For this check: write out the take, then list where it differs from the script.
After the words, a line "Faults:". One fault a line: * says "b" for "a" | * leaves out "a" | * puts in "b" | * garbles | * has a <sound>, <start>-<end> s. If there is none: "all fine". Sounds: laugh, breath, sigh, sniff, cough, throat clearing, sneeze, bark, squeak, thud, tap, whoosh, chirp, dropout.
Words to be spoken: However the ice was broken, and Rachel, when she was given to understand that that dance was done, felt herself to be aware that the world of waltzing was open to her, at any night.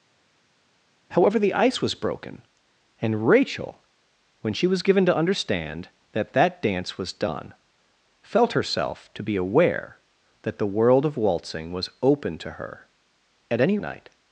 However the ice was broken, and Rachel, when she was given to understand that that dance was done, felt herself to be aware that the world of waltzing was open to her, at any night.
Faults:
all fine